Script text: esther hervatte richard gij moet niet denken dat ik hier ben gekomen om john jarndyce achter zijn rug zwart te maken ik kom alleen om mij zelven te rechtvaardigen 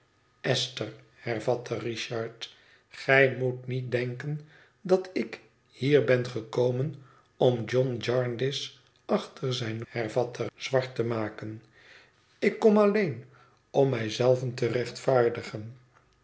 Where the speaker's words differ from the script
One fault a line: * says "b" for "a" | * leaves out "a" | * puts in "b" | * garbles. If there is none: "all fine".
* says "hervatte" for "rug"